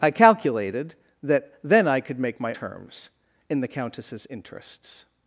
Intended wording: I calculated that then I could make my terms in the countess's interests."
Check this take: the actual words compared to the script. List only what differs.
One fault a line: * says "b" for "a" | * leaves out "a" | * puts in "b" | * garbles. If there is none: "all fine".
all fine